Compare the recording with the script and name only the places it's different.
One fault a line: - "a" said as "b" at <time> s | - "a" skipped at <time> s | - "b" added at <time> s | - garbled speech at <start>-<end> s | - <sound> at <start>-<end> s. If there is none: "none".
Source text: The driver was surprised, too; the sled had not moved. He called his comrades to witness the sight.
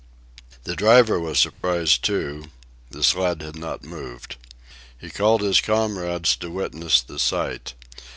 - dropout at 1.5-1.6 s